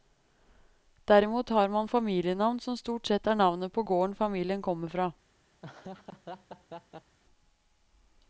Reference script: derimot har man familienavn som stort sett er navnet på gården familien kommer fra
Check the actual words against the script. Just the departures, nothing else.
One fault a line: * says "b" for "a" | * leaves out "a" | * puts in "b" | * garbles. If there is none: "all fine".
all fine